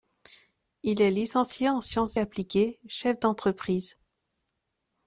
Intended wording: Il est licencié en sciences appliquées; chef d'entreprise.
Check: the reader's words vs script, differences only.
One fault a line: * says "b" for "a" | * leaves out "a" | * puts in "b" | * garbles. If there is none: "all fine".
all fine